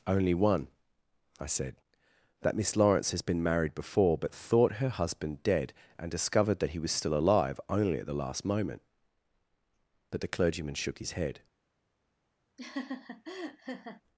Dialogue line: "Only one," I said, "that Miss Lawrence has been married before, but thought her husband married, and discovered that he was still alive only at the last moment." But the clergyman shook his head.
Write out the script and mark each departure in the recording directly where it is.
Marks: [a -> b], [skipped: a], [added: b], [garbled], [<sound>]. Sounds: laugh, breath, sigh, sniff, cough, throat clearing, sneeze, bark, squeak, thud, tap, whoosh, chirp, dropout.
"Only one," I said, "that Miss Lawrence has been married before, but thought her husband [married, -> dead] and discovered that he was still alive only at the last moment." But the clergyman shook his head. [laugh]